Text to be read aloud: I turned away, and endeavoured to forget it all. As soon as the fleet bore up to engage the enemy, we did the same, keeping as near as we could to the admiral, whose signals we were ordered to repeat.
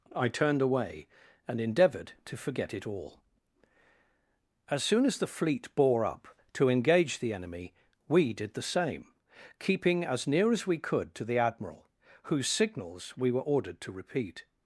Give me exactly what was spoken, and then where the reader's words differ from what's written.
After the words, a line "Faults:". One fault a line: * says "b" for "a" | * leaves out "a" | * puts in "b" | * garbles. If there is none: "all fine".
I turned away, and endeavoured to forget it all. As soon as the fleet bore up to engage the enemy, we did the same, keeping as near as we could to the admiral, whose signals we were ordered to repeat.
Faults:
all fine